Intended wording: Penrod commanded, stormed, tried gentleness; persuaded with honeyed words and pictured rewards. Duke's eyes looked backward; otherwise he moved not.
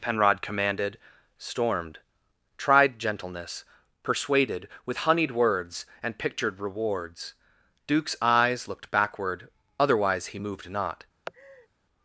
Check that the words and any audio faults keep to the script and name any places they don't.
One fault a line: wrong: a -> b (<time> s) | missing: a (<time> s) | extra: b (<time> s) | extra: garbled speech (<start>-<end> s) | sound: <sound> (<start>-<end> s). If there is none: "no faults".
sound: laugh (11.3-11.7 s)